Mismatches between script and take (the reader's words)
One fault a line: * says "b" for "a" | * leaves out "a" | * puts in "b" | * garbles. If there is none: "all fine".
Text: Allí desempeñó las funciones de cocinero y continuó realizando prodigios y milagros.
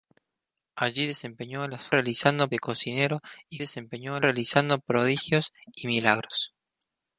* says "realizando" for "funciones"
* says "desempeñó" for "continuó"